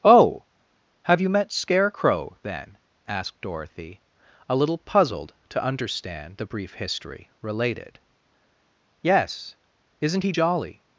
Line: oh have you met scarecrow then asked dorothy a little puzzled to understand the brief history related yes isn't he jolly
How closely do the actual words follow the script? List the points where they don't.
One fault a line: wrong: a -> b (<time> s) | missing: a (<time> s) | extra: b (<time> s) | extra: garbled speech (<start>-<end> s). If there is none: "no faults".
no faults